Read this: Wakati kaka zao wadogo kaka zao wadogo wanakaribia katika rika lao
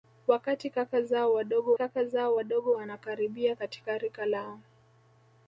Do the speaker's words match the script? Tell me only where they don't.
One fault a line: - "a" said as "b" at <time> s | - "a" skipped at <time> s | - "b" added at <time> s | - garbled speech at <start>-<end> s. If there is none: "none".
none